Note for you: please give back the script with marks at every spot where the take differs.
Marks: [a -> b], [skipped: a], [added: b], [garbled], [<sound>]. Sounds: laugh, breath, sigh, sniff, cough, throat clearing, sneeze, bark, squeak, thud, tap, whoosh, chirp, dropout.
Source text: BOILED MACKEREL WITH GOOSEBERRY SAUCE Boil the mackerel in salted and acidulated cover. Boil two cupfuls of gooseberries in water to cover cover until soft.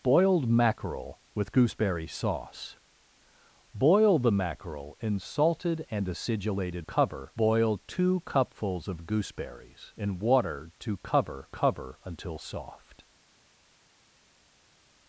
BOILED MACKEREL WITH GOOSEBERRY SAUCE Boil the mackerel in salted and acidulated cover. Boil two cupfuls of gooseberries in water to cover cover until soft.